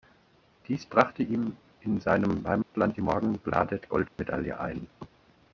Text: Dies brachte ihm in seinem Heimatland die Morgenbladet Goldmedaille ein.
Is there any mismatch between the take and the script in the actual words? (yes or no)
no